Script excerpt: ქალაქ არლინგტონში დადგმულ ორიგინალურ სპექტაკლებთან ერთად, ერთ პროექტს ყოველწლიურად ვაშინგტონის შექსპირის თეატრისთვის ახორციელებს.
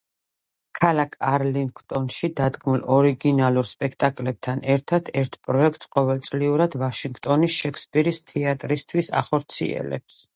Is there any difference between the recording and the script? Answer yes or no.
no